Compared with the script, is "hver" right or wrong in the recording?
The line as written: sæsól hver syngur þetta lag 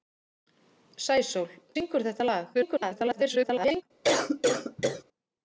wrong